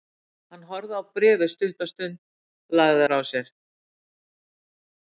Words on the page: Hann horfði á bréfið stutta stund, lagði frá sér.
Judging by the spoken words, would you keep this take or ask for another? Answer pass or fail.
pass